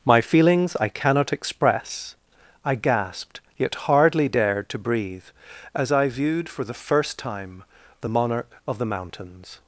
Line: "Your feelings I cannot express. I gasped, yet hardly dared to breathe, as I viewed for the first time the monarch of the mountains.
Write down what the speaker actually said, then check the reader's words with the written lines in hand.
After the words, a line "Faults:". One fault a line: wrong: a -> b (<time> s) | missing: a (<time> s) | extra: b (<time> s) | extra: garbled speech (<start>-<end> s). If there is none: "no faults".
"My feelings I cannot express. I gasped, yet hardly dared to breathe, as I viewed for the first time the monarch of the mountains.
Faults:
wrong: Your -> My (0.1 s)